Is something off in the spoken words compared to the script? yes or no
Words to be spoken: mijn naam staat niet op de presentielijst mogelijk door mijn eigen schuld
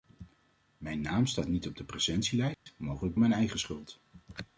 yes